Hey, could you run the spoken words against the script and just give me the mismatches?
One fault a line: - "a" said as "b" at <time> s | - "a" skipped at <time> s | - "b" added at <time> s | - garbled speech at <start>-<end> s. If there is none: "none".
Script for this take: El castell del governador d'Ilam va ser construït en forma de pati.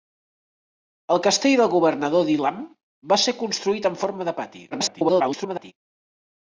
- garbled speech at 4.7-5.7 s